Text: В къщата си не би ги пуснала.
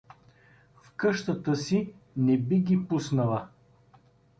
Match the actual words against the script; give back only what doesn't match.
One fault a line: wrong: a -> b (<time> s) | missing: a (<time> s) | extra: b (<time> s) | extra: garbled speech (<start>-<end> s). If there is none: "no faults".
no faults